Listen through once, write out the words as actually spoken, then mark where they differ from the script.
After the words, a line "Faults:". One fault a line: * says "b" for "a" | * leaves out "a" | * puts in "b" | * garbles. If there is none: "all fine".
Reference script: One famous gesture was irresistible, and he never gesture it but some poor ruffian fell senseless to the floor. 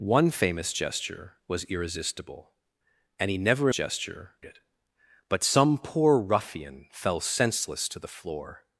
One famous gesture was irresistible, and he never gesture it but some poor ruffian fell senseless to the floor.
Faults:
all fine